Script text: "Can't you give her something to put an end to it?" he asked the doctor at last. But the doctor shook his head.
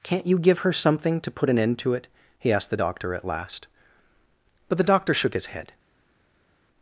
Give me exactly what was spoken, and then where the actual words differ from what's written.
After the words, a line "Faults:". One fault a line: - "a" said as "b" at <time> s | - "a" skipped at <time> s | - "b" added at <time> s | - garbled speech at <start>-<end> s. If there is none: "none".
"Can't you give her something to put an end to it?" he asked the doctor at last. But the doctor shook his head.
Faults:
none